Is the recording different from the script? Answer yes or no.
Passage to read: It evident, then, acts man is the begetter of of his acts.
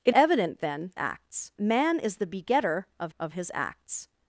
no